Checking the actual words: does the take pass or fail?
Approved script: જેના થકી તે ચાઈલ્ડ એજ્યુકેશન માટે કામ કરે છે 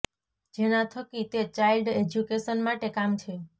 fail